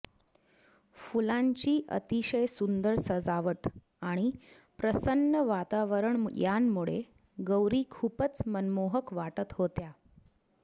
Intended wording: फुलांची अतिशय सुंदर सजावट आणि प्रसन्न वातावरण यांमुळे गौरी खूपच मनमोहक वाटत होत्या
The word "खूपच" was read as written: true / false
true